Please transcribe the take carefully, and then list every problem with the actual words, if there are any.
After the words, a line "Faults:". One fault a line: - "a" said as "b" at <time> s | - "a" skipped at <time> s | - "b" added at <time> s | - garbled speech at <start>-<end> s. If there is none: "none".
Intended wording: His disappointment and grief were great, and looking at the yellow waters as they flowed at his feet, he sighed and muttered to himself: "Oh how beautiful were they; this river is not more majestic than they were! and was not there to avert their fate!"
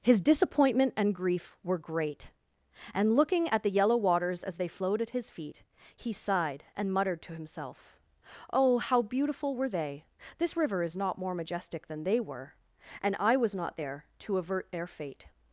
His disappointment and grief were great, and looking at the yellow waters as they flowed at his feet, he sighed and muttered to himself: "Oh how beautiful were they; this river is not more majestic than they were! and I was not there to avert their fate!"
Faults:
- "I" added at 13.2 s